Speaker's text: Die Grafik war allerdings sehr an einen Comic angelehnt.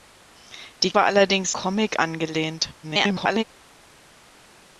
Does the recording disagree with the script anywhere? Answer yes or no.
yes